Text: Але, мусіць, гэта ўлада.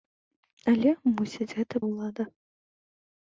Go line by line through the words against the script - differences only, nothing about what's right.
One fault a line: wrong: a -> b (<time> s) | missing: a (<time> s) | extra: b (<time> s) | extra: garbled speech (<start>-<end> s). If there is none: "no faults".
no faults